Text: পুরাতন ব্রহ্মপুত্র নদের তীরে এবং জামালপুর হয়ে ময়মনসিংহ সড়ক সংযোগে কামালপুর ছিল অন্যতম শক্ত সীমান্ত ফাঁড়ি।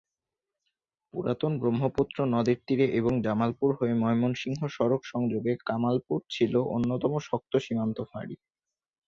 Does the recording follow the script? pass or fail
pass